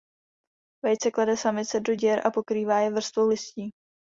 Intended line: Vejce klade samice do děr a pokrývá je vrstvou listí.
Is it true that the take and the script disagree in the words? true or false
false